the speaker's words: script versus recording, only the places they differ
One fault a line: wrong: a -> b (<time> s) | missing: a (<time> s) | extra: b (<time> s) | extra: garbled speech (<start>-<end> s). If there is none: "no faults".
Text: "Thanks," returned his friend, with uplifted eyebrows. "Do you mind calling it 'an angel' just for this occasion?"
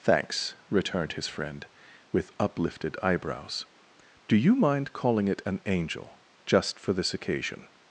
no faults